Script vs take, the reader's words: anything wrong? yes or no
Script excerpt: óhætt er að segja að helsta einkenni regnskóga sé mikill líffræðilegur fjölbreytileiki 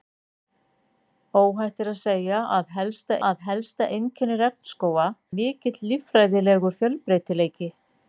yes